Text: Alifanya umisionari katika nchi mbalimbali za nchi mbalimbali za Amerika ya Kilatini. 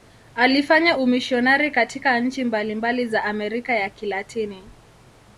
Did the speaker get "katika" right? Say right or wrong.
right